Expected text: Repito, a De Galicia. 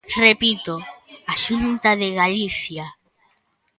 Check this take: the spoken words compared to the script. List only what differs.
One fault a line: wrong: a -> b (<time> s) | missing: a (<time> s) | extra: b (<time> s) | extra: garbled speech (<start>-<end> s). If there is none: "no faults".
extra: Xunta (1.4 s)